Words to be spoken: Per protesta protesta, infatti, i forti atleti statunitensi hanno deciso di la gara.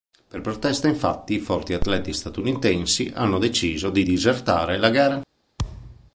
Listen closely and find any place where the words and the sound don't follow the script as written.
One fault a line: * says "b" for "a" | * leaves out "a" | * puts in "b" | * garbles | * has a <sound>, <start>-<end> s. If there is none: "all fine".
* leaves out "protesta"
* puts in "disertare"
* has a thud, 5.6-6.1 s